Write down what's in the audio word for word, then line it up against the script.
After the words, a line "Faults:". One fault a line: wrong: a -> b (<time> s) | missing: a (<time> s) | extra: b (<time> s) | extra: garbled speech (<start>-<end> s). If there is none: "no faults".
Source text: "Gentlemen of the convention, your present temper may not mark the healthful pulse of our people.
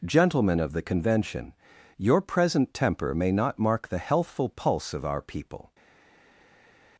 "Gentlemen of the convention, your present temper may not mark the healthful pulse of our people.
Faults:
no faults